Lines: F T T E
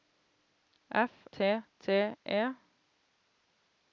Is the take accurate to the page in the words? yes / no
yes